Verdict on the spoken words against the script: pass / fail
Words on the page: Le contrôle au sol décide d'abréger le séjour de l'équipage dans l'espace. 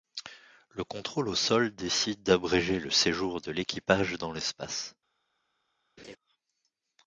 pass